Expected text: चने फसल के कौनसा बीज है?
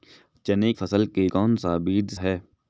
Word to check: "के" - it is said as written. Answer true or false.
true